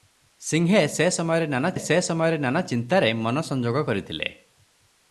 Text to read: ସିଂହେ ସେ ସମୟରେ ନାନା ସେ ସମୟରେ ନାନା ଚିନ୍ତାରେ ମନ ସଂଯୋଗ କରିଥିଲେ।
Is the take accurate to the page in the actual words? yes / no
yes